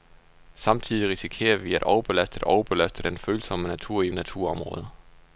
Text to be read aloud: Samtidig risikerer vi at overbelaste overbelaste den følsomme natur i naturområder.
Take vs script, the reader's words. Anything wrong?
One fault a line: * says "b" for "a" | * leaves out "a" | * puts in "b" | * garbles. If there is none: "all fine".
all fine